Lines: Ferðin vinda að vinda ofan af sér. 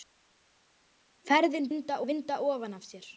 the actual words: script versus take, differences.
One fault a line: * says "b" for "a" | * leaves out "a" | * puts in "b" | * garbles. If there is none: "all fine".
all fine